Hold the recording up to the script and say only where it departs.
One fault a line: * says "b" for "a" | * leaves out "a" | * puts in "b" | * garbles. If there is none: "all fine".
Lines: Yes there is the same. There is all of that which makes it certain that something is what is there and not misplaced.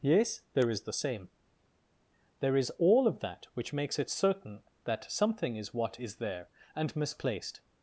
* leaves out "not"